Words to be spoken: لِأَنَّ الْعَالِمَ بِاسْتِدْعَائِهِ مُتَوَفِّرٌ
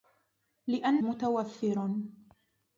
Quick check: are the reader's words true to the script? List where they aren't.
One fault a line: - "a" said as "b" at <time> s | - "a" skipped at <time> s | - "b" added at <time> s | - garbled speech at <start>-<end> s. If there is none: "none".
- "الْعَالِمَ بِاسْتِدْعَائِهِ" skipped at 1.0 s